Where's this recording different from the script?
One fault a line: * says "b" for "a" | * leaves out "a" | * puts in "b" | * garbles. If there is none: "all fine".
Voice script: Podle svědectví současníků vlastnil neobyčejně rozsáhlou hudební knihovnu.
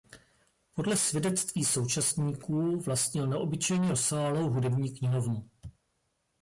all fine